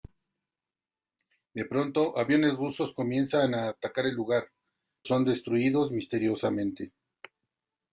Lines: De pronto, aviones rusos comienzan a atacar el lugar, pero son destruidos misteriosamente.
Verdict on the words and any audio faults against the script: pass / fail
fail